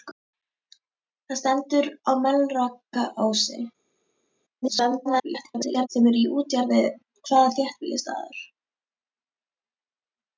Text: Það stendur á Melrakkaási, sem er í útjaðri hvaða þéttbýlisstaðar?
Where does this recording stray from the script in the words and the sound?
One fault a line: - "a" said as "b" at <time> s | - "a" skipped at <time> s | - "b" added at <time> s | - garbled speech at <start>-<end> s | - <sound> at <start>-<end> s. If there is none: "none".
- garbled speech at 4.6-5.9 s